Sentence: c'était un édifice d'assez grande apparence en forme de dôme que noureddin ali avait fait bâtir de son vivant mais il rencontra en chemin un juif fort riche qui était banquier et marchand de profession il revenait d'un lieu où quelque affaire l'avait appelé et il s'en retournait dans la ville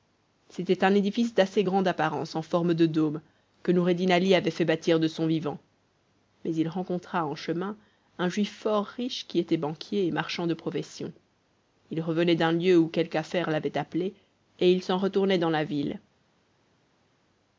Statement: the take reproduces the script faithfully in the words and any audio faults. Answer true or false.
true